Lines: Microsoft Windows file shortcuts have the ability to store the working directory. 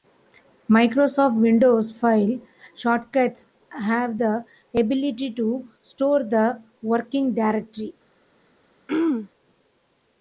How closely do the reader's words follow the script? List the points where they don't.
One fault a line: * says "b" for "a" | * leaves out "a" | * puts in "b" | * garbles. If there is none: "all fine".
all fine